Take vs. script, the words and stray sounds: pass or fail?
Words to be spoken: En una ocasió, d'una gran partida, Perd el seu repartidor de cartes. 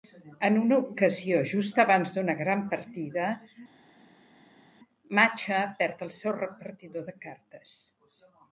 fail